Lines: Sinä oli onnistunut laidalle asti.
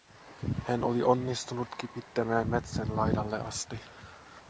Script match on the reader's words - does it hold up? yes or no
no